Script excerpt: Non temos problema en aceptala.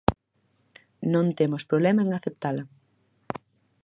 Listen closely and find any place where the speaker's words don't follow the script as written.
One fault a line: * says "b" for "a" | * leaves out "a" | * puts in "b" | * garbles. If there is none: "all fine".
all fine